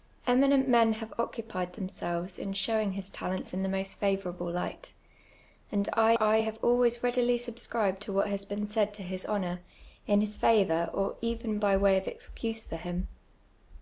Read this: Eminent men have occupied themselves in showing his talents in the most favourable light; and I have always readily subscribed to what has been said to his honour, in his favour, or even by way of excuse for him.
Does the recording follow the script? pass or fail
fail